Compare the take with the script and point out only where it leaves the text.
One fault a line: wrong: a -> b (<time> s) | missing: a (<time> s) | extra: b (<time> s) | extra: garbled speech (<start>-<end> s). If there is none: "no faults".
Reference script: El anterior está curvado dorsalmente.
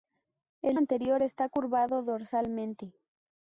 no faults